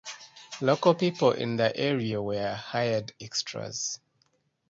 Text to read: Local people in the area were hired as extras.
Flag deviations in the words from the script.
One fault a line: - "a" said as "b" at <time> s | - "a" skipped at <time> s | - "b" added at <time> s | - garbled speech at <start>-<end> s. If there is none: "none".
- "as" skipped at 3.1 s